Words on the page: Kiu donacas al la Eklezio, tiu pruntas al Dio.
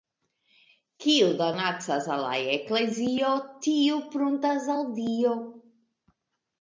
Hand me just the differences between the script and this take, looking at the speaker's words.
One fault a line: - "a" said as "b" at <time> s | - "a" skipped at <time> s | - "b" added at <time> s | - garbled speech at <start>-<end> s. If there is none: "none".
none